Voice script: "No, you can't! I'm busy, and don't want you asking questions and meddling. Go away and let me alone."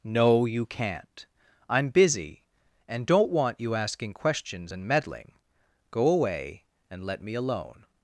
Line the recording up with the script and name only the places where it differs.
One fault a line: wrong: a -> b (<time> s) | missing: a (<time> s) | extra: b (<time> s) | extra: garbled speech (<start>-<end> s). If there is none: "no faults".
no faults